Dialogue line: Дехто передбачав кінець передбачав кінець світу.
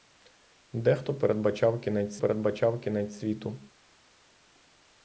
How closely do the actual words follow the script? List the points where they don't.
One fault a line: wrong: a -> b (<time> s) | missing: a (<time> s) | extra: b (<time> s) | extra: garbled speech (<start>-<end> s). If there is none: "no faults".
no faults